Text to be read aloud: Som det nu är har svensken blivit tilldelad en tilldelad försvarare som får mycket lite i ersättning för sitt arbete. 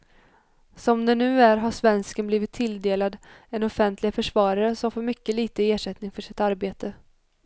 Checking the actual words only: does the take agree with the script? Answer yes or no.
no